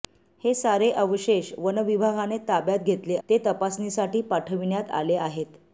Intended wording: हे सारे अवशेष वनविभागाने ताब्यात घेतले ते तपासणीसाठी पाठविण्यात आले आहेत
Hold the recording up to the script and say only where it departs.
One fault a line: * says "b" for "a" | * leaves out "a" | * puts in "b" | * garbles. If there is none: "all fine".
all fine